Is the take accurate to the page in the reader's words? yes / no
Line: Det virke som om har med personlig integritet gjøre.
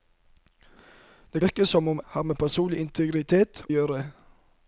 yes